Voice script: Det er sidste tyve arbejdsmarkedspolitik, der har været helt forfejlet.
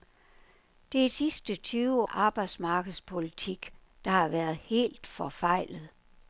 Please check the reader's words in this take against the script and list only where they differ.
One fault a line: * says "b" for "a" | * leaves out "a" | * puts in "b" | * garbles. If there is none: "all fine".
all fine